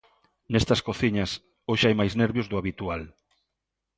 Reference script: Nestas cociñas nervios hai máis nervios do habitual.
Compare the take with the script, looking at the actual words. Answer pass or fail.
fail